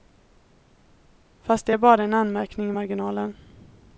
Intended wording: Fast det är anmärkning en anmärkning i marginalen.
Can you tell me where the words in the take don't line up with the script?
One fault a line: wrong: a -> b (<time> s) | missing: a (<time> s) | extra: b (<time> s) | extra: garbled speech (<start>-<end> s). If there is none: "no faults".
wrong: anmärkning -> bara (1.8 s)